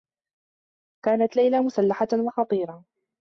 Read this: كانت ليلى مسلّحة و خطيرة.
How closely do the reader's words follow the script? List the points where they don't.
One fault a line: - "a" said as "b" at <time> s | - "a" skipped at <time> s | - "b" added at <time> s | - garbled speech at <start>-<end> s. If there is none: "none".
none